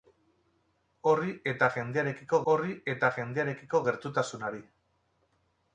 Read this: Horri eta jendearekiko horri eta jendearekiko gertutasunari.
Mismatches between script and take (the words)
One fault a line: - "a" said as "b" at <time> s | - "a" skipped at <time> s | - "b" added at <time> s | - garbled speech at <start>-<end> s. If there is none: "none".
none